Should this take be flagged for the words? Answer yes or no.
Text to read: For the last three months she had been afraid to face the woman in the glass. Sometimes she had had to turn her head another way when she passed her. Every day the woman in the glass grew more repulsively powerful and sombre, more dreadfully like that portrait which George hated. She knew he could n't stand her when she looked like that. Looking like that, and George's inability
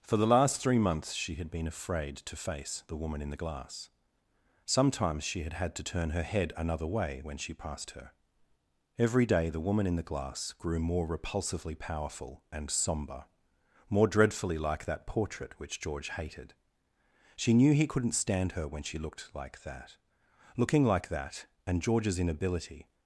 no